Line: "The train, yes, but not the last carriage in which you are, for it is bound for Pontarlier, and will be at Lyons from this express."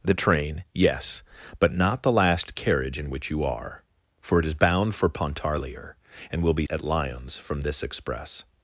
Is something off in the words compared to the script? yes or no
no